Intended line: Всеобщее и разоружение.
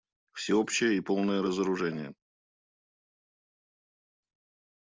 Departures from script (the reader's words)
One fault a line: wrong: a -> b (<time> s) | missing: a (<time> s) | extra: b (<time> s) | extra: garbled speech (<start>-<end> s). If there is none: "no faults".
extra: полное (1.0 s)